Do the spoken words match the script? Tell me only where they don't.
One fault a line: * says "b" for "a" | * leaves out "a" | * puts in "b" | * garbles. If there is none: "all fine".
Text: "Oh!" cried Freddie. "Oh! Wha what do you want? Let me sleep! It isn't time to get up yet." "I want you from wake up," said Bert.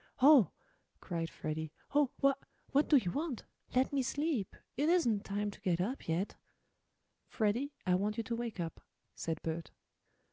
* puts in "Freddie"
* says "to" for "from"